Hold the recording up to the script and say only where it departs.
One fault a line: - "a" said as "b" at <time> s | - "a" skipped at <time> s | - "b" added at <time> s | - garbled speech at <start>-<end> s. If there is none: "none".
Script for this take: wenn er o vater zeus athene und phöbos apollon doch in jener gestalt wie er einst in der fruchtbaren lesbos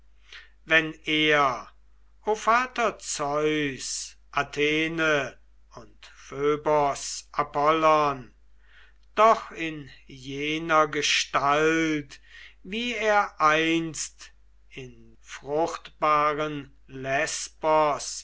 - "der" skipped at 15.2 s